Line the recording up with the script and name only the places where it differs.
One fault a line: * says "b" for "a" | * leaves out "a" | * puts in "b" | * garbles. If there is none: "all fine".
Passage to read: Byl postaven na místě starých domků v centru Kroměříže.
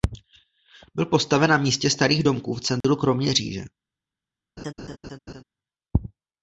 all fine